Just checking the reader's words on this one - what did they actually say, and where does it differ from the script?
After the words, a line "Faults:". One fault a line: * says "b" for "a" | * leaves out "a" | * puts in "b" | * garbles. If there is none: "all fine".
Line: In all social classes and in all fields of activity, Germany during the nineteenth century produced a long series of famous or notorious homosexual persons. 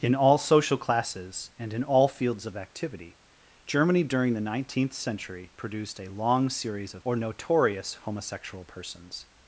In all social classes and in all fields of activity, Germany during the nineteenth century produced a long series of or notorious homosexual persons.
Faults:
* leaves out "famous"